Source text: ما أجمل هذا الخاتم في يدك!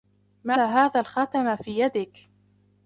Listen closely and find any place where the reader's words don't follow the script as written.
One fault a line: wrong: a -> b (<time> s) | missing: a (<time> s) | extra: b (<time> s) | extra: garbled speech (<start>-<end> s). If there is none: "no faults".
missing: أجمل (0.5 s)